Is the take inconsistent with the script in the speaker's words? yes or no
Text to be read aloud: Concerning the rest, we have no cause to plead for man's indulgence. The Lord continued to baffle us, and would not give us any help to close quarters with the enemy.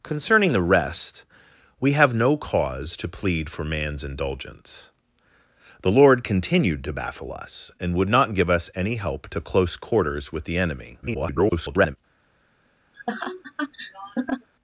yes